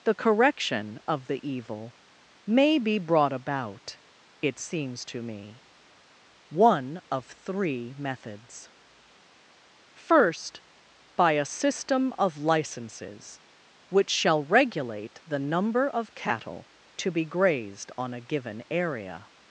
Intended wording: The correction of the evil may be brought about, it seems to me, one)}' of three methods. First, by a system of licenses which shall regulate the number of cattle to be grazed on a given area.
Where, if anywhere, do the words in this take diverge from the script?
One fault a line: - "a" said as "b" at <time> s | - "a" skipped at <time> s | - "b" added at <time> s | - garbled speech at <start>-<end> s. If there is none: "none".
none